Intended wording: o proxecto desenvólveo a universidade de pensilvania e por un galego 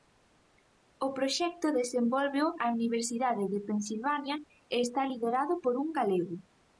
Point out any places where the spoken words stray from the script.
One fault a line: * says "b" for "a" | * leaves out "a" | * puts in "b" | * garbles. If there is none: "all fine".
* puts in "está liderado"